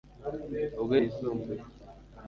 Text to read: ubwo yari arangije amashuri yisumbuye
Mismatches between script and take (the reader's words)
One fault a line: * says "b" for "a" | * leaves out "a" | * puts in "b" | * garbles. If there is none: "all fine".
* leaves out "yari arangije amashuri"